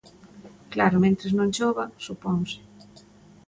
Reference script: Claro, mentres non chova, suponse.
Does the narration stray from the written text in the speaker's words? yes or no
no